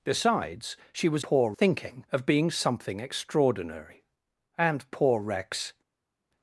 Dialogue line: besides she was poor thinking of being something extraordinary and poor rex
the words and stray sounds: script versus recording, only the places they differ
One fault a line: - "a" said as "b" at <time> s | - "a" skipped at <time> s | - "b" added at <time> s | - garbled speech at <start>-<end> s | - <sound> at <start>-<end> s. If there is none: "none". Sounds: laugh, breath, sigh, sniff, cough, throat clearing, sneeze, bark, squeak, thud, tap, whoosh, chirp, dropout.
none